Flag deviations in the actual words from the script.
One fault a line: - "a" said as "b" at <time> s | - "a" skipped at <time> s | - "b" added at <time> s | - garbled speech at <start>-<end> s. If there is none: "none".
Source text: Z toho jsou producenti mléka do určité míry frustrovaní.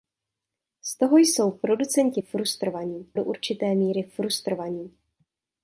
- "mléka" said as "frustrovaní" at 2.2 s